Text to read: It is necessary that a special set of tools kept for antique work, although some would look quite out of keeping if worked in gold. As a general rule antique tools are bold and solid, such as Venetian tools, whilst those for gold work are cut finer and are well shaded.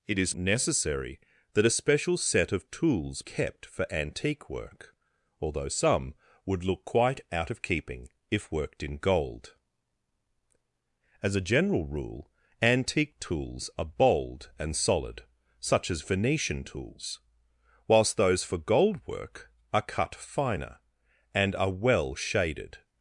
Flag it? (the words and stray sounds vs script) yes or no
no